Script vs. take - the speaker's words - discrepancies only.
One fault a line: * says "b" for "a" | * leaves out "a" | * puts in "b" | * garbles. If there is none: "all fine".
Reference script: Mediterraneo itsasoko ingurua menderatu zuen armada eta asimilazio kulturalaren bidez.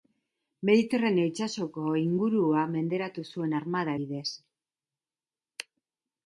* leaves out "eta asimilazio kulturalaren"